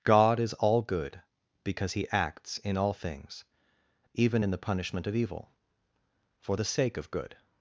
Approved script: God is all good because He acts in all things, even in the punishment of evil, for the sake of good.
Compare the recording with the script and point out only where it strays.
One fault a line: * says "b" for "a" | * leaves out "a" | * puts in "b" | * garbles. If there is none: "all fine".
all fine